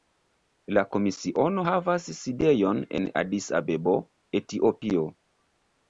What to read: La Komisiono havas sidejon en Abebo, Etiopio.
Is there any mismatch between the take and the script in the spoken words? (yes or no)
yes